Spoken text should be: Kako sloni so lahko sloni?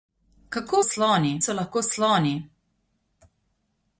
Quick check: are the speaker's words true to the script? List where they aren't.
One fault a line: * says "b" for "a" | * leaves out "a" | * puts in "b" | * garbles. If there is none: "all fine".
all fine